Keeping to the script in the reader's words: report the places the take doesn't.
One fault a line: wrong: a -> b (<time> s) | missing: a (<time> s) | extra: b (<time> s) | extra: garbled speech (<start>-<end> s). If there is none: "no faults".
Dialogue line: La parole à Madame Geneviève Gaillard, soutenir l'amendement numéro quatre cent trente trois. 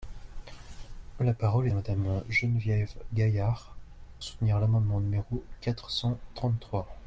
no faults